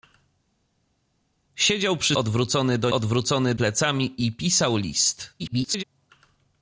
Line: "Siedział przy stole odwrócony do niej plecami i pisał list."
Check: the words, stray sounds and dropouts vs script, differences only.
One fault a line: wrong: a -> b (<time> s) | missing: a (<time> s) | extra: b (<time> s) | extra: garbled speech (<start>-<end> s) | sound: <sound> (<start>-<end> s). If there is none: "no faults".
missing: stole (2.2 s)
wrong: niej -> odwrócony (2.9 s)
extra: garbled speech (5.4-5.8 s)